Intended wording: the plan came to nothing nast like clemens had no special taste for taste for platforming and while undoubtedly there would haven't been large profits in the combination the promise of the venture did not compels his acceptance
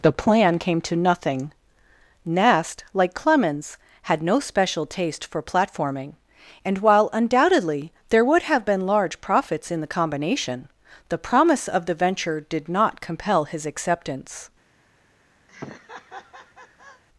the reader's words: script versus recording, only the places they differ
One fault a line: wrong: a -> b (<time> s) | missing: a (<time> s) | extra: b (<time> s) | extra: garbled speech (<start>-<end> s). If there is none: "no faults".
missing: taste for (5.4 s)
wrong: haven't -> have (8.4 s)
wrong: compels -> compel (13.0 s)